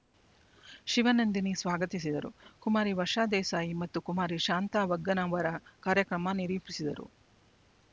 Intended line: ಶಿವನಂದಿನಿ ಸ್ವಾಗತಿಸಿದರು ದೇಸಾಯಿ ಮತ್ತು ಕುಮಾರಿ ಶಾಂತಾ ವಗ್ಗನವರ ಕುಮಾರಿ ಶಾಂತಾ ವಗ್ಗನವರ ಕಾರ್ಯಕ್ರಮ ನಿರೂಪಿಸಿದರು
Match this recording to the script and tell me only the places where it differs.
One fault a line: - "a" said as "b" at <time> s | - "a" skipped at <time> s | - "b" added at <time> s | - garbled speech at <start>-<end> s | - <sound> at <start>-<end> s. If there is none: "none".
- "ಕುಮಾರಿ ವರ್ಷಾ" added at 2.6 s
- "ಕುಮಾರಿ ಶಾಂತಾ ವಗ್ಗನವರ" skipped at 5.5 s